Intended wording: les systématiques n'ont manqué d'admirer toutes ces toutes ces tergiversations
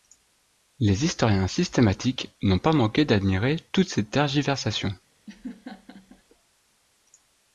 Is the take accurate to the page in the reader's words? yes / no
no